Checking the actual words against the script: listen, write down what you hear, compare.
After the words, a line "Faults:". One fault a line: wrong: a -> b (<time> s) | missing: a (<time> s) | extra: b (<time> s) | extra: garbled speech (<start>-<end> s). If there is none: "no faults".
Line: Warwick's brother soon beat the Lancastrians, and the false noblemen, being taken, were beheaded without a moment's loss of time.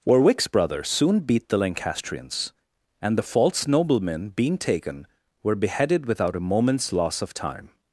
Warwick's brother soon beat the Lancastrians, and the false noblemen, being taken, were beheaded without a moment's loss of time.
Faults:
no faults